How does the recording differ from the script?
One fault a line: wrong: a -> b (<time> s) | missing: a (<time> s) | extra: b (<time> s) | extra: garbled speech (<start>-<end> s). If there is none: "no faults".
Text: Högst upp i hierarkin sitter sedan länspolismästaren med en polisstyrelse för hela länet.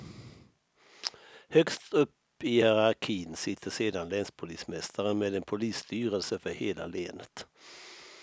no faults